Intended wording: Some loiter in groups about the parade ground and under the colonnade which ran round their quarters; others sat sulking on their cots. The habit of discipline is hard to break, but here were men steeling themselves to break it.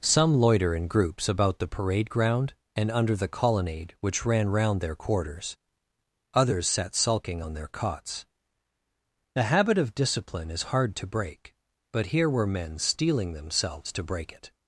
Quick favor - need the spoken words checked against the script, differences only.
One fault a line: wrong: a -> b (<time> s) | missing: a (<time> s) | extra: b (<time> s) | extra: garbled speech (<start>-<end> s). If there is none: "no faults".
no faults